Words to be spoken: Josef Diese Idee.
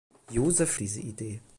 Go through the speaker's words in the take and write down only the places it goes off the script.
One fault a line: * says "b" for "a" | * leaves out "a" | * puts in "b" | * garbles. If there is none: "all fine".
all fine